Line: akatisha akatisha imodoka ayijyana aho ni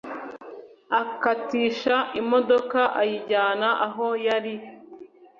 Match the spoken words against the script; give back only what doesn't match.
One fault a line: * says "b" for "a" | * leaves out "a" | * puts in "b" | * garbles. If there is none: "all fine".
* leaves out "akatisha"
* says "yari" for "ni"